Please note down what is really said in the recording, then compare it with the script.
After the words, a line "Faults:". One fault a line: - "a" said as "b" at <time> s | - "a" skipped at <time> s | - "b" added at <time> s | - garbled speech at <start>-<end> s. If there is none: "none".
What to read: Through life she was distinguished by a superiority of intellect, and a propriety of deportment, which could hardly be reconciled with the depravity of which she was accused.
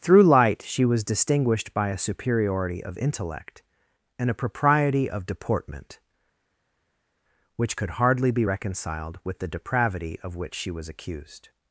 Through light she was distinguished by a superiority of intellect, and a propriety of deportment, which could hardly be reconciled with the depravity of which she was accused.
Faults:
- "life" said as "light" at 0.2 s